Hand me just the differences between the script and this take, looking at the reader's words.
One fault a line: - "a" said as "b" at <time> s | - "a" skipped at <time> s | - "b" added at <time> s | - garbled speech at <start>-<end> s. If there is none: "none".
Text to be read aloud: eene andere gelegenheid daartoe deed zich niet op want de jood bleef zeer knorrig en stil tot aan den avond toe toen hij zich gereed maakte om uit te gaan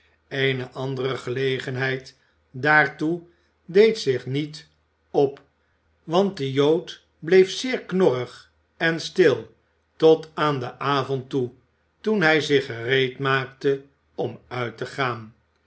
none